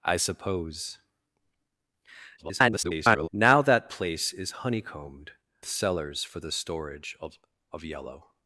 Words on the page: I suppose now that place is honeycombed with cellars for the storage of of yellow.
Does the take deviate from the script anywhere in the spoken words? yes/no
yes